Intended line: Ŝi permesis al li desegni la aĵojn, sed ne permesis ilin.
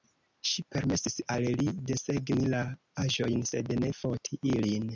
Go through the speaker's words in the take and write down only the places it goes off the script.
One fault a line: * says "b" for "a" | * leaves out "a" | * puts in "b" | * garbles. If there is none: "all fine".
* says "foti" for "permesis"